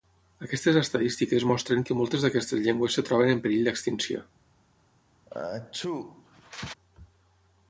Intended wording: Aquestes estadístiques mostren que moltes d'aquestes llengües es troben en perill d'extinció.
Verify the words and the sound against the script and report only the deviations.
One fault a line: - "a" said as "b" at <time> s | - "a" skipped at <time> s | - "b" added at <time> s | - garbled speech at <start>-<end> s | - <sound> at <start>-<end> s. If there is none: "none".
- sneeze at 5.3-6.7 s